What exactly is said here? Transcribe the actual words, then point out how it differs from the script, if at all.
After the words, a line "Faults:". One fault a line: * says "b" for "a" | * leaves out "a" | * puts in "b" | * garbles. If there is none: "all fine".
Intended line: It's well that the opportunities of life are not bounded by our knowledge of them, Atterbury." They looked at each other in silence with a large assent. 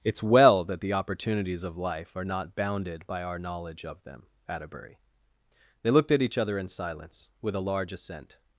It's well that the opportunities of life are not bounded by our knowledge of them, Atterbury." They looked at each other in silence with a large assent.
Faults:
all fine